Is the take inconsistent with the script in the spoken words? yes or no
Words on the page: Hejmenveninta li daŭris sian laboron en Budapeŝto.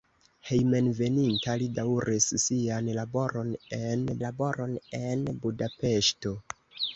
yes